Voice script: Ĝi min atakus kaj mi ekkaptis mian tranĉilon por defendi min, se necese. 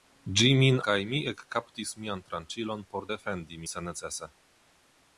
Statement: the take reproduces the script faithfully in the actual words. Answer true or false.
false